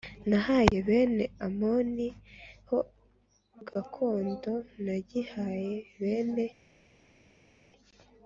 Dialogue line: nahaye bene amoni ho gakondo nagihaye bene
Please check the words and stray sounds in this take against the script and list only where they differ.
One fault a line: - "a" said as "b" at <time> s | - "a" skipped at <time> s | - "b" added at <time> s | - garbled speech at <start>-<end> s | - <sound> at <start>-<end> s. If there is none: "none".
none